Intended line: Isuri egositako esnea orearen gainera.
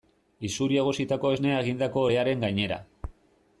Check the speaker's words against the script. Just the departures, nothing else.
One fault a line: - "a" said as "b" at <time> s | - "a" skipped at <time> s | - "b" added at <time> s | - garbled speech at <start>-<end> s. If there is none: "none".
- "egindako" added at 1.6 s